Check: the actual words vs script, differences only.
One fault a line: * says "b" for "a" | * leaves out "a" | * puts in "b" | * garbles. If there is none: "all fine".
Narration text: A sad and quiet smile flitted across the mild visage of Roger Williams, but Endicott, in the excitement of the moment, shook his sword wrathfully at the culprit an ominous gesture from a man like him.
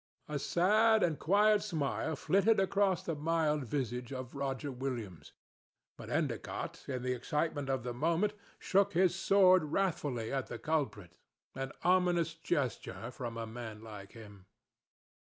all fine